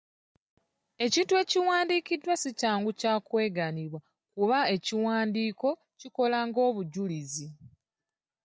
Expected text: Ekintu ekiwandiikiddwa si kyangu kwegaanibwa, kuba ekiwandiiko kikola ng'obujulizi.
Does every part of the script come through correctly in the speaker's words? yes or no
no